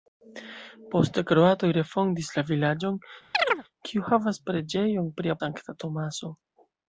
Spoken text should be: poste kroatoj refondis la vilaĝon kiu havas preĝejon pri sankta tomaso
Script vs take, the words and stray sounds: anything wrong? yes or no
yes